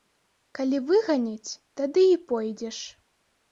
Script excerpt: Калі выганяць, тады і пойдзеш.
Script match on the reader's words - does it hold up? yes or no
yes